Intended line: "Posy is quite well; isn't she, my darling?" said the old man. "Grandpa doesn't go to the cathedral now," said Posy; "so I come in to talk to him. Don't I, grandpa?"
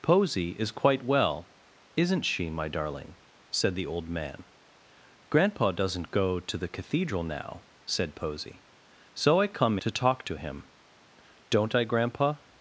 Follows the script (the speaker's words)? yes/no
no